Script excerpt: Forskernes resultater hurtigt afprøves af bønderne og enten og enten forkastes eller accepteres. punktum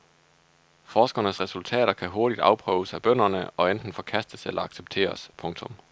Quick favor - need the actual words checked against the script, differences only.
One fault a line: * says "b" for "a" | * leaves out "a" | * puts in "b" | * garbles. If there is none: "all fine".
* puts in "kan"
* leaves out "og enten"